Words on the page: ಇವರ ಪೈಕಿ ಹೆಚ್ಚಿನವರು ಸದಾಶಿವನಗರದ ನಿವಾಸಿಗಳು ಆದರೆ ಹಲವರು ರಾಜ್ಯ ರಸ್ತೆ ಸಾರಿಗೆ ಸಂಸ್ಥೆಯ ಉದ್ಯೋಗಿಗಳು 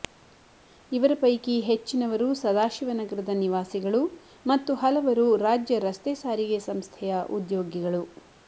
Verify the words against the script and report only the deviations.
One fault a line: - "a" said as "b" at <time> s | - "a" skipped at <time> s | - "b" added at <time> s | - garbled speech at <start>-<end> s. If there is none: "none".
- "ಆದರೆ" said as "ಮತ್ತು" at 4.4 s